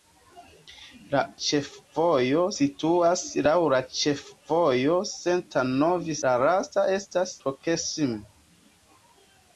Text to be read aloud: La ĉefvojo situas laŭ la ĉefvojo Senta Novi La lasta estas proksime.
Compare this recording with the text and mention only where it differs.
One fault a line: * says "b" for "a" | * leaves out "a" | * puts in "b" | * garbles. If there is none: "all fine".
all fine